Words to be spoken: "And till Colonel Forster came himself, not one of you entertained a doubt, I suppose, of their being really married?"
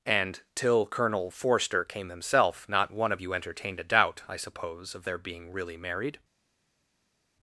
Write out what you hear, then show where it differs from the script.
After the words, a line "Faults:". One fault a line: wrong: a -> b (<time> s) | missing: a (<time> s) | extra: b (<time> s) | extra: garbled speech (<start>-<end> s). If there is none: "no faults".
"And till Colonel Forster came himself, not one of you entertained a doubt, I suppose, of their being really married?"
Faults:
no faults